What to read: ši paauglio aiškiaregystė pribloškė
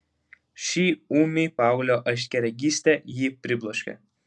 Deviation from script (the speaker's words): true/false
true